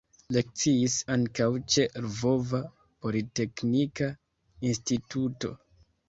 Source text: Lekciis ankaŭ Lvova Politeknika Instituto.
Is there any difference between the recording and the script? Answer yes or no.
yes